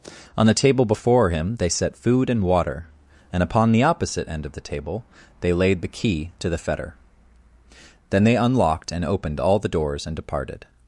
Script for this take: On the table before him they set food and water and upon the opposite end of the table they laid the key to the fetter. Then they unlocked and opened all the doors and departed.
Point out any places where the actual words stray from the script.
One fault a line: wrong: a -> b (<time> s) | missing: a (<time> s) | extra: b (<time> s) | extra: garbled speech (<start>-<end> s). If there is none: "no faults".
no faults